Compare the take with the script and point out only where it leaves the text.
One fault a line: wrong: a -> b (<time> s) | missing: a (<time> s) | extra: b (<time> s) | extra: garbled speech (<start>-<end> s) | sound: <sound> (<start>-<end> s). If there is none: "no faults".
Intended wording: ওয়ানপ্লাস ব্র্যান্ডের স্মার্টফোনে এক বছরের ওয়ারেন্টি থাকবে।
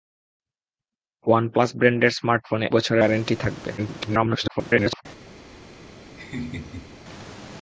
missing: এক (2.7 s)
extra: garbled speech (3.8-5.1 s)
sound: laugh (6.2-6.9 s)